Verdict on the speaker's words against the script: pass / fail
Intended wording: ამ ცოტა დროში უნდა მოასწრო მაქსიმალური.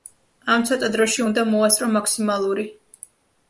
pass